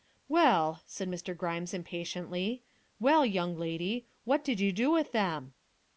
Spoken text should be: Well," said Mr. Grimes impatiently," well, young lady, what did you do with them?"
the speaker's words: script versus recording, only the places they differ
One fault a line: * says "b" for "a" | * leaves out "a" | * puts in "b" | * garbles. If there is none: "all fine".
all fine